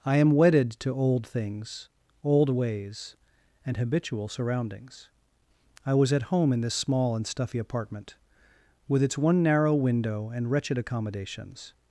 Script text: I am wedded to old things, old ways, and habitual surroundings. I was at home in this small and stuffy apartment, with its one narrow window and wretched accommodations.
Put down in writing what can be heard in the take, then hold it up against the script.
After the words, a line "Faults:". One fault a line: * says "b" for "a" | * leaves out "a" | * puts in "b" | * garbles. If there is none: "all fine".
I am wedded to old things, old ways, and habitual surroundings. I was at home in this small and stuffy apartment, with its one narrow window and wretched accommodations.
Faults:
all fine